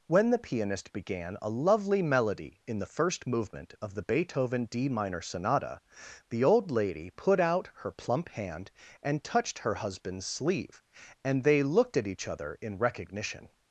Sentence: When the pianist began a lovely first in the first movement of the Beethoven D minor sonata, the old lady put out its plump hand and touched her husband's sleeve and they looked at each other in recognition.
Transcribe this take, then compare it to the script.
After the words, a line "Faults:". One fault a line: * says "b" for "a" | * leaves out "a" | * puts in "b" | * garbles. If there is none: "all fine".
When the pianist began a lovely melody in the first movement of the Beethoven D minor sonata, the old lady put out her plump hand and touched her husband's sleeve and they looked at each other in recognition.
Faults:
* says "melody" for "first"
* says "her" for "its"